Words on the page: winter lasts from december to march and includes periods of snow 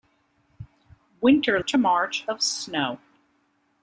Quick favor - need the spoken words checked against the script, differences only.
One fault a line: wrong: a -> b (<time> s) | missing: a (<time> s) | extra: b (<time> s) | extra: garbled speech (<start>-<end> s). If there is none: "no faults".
missing: lasts from december (1.6 s)
missing: and includes periods (2.3 s)